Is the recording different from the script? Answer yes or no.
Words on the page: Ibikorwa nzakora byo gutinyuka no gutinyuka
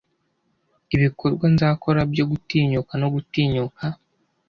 no